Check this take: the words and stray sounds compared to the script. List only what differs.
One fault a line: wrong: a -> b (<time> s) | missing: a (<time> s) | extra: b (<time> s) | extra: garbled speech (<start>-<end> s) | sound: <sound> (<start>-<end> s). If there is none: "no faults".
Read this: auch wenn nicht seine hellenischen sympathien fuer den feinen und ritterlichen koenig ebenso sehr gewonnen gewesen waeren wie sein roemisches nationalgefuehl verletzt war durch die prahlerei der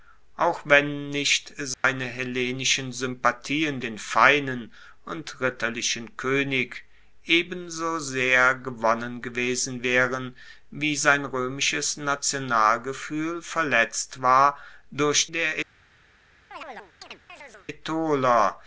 sound: dropout (1.7-1.8 s)
missing: fuer (3.8 s)
missing: die prahlerei (15.3 s)
sound: chirp (16.5-17.7 s)